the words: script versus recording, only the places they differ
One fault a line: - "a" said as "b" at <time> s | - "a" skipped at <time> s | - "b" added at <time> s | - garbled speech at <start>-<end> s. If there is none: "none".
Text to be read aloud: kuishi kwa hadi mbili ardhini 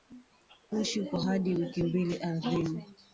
- "wiki" added at 1.6 s